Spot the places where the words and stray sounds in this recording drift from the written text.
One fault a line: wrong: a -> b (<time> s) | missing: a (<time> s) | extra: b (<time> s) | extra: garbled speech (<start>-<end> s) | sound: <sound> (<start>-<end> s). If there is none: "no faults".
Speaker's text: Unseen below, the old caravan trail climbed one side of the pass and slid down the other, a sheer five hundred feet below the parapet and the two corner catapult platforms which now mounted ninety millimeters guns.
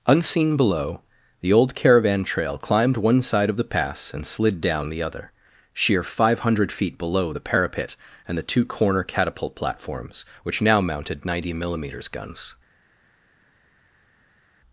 missing: a (5.3 s)